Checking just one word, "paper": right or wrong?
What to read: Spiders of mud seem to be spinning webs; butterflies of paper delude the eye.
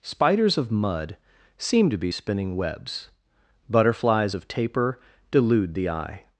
wrong